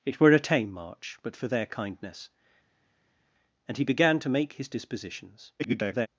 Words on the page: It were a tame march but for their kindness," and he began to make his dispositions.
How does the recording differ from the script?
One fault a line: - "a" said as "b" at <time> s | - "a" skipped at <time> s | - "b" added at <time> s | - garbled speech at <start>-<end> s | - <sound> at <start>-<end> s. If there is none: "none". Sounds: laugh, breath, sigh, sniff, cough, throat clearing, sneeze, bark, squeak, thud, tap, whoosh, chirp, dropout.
- garbled speech at 5.6-6.1 s